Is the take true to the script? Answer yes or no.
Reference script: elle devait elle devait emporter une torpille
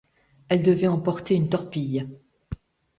no